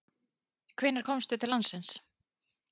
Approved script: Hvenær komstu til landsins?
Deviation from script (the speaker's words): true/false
false